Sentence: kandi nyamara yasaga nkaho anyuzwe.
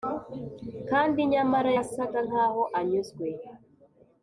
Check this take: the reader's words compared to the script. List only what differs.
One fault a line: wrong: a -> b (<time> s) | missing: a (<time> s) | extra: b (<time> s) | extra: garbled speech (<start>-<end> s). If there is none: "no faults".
no faults